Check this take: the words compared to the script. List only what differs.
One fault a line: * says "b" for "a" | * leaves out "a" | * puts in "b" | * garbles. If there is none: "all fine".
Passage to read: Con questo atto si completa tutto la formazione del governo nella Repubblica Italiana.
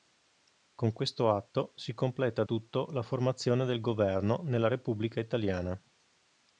all fine